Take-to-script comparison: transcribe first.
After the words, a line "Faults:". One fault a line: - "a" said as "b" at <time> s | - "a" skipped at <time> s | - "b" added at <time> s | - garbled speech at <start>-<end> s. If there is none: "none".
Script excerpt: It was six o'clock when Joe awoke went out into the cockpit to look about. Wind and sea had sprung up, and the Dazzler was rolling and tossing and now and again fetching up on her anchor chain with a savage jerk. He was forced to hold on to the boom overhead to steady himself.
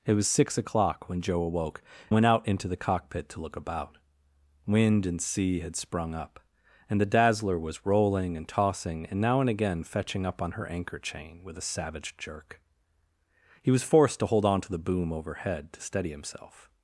It was six o'clock when Joe awoke went out into the cockpit to look about. Wind and sea had sprung up, and the Dazzler was rolling and tossing and now and again fetching up on her anchor chain with a savage jerk. He was forced to hold on to the boom overhead to steady himself.
Faults:
none